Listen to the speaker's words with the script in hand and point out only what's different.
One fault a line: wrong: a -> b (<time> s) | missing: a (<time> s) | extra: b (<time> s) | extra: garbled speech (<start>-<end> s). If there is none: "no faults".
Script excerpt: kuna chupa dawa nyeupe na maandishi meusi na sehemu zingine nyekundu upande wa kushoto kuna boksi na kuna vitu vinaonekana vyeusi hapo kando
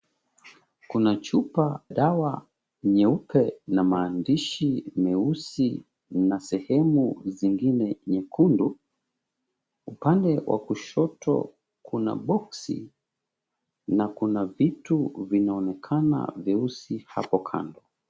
no faults